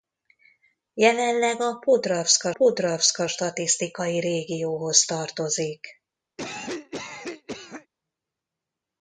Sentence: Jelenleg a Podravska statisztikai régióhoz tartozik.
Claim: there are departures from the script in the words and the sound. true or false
true